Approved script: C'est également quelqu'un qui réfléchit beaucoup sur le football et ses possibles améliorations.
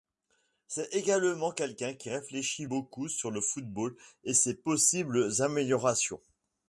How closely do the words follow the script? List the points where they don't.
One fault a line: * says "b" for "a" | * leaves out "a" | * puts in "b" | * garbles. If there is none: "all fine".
all fine